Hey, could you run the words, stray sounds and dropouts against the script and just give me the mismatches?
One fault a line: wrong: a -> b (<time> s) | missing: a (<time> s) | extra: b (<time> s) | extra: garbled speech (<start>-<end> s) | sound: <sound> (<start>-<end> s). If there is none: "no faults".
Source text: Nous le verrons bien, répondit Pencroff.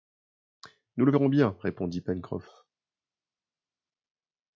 no faults